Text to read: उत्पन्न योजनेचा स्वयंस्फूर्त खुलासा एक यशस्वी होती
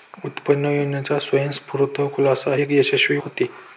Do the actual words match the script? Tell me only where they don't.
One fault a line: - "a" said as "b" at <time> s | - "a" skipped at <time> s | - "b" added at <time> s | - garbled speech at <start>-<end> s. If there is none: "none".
none